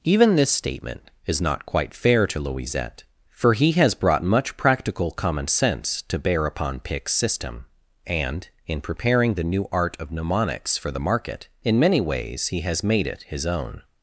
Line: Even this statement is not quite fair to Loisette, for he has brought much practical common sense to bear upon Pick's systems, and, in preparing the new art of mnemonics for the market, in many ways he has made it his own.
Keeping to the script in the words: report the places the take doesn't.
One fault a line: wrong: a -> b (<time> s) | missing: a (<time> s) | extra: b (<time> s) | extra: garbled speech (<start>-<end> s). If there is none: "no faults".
wrong: systems -> system (7.1 s)